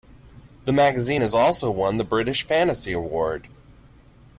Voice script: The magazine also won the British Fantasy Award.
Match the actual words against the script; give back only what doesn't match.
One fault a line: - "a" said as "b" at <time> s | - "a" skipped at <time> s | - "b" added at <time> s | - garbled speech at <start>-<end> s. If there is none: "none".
- "has" added at 1.2 s